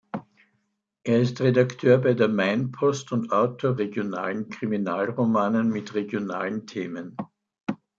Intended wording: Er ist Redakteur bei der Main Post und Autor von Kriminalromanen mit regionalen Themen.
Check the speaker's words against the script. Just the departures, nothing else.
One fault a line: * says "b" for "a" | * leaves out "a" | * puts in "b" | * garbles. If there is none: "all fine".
* says "regionalen" for "von"